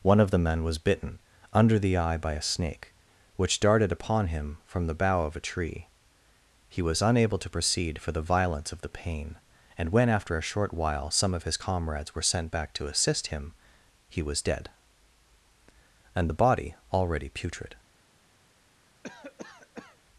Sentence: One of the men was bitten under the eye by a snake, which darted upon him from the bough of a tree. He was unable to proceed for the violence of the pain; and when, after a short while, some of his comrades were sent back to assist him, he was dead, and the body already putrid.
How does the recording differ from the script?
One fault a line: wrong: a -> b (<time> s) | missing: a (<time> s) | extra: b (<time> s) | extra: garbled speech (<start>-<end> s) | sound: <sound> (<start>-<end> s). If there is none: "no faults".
sound: cough (19.0-20.0 s)